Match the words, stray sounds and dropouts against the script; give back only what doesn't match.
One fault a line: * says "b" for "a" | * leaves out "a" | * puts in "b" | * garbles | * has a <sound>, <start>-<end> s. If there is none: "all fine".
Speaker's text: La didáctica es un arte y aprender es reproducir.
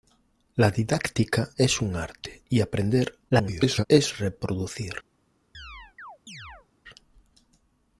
* garbles
* has a chirp, 5.5-6.7 s